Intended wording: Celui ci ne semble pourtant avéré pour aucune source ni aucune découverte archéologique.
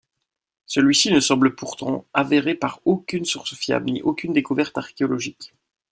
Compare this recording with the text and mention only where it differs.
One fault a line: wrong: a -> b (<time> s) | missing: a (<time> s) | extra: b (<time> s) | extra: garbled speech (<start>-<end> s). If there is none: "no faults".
wrong: pour -> par (2.5 s)
extra: fiable (3.5 s)